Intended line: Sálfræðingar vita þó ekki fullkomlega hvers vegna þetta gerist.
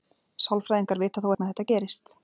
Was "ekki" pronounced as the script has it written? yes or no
no